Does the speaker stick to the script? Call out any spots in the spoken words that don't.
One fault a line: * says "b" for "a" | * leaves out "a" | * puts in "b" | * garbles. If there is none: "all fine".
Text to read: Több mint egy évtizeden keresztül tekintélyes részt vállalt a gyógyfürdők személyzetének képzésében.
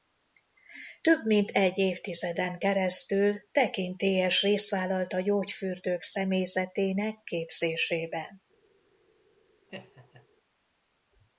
all fine